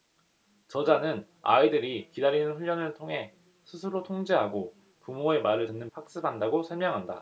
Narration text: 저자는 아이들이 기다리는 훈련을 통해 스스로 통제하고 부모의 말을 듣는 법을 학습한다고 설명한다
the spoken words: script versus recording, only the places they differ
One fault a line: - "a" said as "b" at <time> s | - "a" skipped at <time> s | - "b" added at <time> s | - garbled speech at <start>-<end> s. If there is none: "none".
- "법을" skipped at 5.9 s